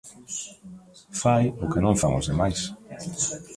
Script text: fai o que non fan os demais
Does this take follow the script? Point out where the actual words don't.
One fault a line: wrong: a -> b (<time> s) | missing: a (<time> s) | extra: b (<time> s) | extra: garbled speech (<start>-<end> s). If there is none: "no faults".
no faults